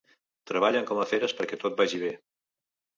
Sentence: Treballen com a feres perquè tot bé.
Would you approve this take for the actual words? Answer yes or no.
no